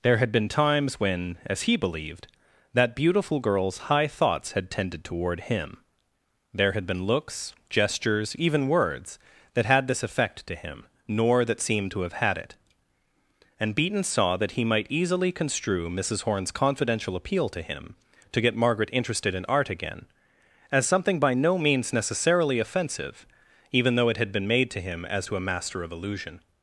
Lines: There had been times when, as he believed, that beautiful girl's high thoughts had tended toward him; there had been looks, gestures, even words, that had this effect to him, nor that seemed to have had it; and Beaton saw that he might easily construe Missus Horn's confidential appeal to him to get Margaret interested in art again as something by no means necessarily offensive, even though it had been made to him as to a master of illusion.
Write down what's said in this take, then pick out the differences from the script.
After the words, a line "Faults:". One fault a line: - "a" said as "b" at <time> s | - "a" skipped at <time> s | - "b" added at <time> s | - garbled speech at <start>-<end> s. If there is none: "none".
There had been times when, as he believed, that beautiful girl's high thoughts had tended toward him; there had been looks, gestures, even words, that had this effect to him, nor that seemed to have had it; and Beaton saw that he might easily construe Missus Horn's confidential appeal to him to get Margaret interested in art again as something by no means necessarily offensive, even though it had been made to him as to a master of illusion.
Faults:
none